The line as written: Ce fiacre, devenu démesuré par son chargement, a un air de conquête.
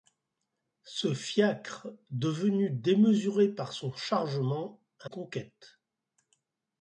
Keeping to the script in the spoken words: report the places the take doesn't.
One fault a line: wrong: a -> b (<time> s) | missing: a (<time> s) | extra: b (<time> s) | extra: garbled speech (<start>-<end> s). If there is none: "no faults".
missing: un air de (5.1 s)